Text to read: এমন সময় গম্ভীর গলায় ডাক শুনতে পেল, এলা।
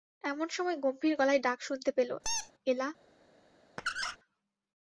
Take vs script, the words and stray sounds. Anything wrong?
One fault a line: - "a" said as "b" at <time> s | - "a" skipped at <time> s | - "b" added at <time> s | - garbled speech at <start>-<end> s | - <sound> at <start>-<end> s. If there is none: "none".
- squeak at 2.2-2.5 s
- squeak at 3.8-4.2 s